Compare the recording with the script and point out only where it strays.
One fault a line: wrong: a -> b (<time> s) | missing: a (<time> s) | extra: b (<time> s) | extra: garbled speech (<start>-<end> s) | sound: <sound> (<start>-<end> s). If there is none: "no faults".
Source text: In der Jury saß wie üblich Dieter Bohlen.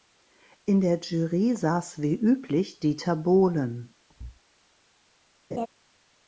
sound: thud (4.1-4.4 s)
sound: laugh (5.5-5.7 s)